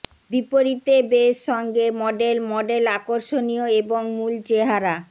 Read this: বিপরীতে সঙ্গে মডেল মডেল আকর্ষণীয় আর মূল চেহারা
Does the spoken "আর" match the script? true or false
false